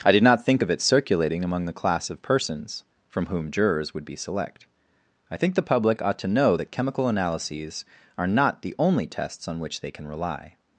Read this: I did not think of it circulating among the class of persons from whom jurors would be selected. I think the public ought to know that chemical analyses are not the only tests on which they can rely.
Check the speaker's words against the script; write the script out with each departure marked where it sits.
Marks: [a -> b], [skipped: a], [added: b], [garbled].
I did not think of it circulating among the class of persons from whom jurors would be [selected. -> select] I think the public ought to know that chemical analyses are not the only tests on which they can rely.